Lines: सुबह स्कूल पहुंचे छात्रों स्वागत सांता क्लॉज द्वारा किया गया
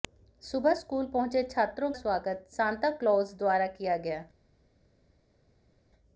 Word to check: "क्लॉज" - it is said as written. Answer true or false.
true